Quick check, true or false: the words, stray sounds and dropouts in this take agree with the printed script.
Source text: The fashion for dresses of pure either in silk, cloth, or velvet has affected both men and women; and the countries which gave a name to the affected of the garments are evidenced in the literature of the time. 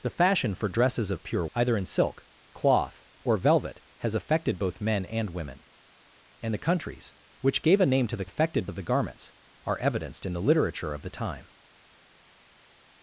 true